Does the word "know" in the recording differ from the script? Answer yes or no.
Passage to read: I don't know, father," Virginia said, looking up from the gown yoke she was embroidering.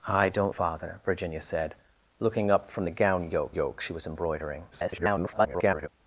yes